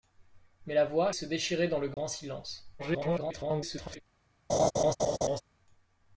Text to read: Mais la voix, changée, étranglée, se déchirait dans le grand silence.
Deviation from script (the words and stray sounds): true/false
true